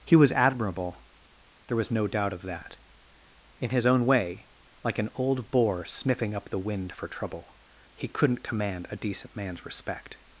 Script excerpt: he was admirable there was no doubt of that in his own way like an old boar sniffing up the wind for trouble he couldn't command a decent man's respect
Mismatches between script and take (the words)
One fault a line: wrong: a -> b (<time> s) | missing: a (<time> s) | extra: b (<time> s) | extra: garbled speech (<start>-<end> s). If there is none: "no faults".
no faults